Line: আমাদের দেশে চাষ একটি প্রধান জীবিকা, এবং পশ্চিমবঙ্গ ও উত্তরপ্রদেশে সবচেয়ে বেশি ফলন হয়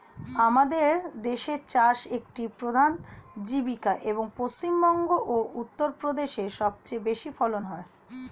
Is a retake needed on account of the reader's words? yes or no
no